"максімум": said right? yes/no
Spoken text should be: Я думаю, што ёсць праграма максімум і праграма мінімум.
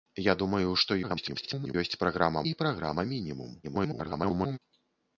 no